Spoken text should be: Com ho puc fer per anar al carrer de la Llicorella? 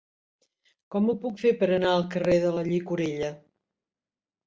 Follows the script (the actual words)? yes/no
yes